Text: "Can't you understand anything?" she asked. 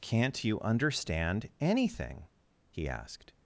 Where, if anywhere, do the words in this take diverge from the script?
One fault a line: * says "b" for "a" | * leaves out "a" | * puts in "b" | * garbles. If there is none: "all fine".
* says "he" for "she"